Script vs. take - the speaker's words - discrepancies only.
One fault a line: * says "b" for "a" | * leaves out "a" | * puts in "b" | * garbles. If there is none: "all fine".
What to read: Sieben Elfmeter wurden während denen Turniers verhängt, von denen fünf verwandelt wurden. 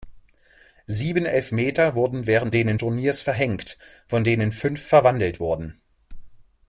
all fine